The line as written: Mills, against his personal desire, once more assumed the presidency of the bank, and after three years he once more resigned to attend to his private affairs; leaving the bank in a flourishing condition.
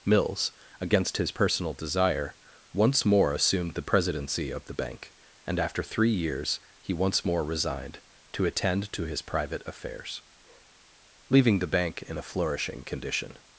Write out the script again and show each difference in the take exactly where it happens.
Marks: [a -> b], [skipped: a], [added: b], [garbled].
Mills, against his personal desire, once more assumed the presidency of the bank, and after three years he once more resigned to attend to his private affairs; leaving the bank in a flourishing condition.